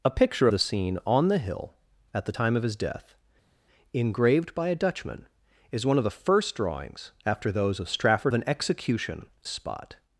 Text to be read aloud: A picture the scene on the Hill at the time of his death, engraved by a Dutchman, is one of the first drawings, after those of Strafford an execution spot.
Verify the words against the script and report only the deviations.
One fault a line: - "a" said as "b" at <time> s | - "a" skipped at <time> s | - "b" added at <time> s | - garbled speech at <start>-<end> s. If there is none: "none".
none